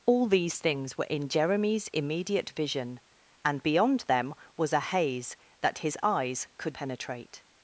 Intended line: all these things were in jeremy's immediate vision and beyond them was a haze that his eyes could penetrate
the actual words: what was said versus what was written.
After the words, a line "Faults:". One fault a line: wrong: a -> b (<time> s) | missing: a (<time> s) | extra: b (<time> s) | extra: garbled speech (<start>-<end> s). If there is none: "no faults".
all these things were in jeremy's immediate vision and beyond them was a haze that his eyes could penetrate
Faults:
no faults